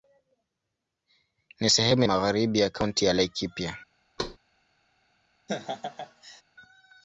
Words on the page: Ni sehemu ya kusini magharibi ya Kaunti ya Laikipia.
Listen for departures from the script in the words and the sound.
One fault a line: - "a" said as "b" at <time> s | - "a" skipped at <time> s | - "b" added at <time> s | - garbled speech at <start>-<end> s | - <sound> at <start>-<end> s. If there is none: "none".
- "ya kusini" skipped at 2.0 s
- thud at 4.2-4.4 s
- laugh at 5.5-6.4 s